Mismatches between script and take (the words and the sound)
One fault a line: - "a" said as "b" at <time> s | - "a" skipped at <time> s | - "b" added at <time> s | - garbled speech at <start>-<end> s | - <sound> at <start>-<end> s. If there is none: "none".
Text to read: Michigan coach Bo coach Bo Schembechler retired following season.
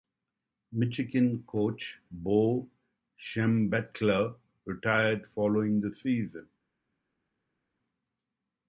- "coach Bo" skipped at 2.7 s
- "the" added at 5.8 s